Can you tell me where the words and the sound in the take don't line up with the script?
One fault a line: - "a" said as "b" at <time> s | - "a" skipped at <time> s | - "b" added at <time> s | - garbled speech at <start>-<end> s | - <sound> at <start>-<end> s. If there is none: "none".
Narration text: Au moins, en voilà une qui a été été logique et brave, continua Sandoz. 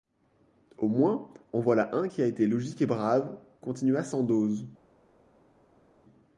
- "une" said as "un" at 1.9 s
- "été" skipped at 2.5 s